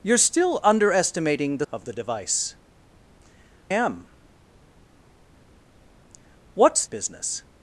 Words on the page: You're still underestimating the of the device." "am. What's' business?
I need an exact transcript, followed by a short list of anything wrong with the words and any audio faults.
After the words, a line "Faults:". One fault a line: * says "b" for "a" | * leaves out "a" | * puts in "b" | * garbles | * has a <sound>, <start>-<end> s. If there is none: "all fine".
You're still underestimating the of the device." "am. What's' business?
Faults:
all fine